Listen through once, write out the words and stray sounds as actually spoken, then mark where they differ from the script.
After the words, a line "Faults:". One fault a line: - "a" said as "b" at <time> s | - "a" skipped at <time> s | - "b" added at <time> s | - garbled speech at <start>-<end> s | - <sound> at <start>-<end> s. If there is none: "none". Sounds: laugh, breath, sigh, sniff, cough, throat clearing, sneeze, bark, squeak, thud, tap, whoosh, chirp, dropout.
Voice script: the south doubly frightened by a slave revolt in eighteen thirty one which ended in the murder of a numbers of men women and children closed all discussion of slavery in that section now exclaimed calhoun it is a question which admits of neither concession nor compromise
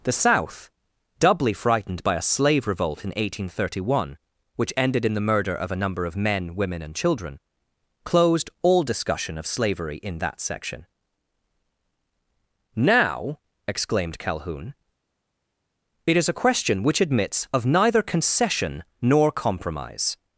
the south doubly frightened by a slave revolt in eighteen thirty one which ended in the murder of a number of men women and children closed all discussion of slavery in that section now exclaimed calhoun it is a question which admits of neither concession nor compromise
Faults:
- "numbers" said as "number" at 5.8 s